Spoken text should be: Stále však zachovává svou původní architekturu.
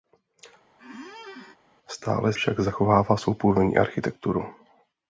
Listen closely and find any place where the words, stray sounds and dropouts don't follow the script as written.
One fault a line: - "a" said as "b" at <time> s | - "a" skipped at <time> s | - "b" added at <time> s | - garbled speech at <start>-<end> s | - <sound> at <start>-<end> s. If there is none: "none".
- squeak at 0.8-1.6 s